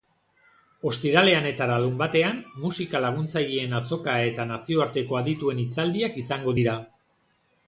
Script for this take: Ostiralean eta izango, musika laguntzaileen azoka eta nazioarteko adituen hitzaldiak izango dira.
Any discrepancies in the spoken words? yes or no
yes